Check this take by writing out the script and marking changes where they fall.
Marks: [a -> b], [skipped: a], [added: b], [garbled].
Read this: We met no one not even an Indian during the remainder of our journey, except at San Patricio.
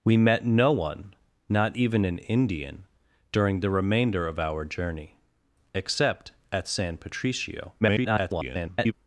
We met no one not even an Indian during the remainder of our journey, except at San Patricio. [garbled]